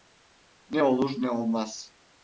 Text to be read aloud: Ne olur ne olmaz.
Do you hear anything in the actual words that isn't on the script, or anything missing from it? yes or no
no